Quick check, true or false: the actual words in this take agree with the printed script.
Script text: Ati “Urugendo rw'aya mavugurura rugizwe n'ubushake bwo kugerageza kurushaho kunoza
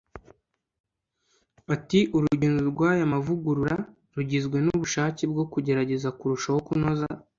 true